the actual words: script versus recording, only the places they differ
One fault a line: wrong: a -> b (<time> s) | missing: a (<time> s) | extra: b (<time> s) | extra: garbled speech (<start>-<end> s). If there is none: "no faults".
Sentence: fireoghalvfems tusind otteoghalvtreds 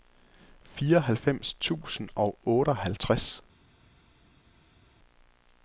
extra: og (2.1 s)